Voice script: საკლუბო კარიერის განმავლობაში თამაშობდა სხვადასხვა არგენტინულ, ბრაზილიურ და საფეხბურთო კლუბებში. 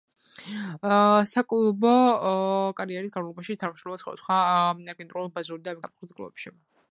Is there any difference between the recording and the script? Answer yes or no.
no